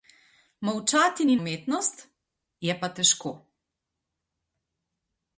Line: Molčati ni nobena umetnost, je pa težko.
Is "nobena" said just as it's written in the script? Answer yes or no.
no